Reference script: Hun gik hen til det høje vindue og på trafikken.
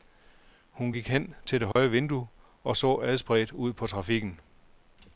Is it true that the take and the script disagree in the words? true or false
true